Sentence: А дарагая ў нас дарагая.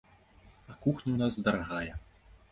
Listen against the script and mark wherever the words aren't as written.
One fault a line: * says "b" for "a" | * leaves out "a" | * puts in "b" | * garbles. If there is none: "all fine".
* says "кухня" for "дарагая"